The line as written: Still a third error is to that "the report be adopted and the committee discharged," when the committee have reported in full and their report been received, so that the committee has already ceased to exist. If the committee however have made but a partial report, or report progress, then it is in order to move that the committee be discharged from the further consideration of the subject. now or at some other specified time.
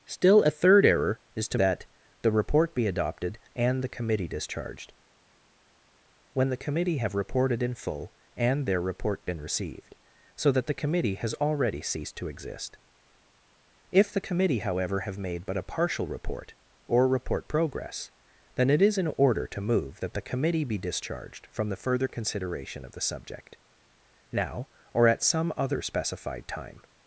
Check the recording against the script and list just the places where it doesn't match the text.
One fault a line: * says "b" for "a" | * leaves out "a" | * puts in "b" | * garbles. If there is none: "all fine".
all fine